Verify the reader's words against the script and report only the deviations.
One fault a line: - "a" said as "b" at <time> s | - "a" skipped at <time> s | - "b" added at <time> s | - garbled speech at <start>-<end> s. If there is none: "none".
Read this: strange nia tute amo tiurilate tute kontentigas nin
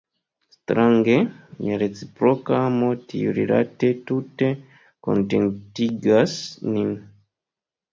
- "tute" said as "reciproka" at 1.8 s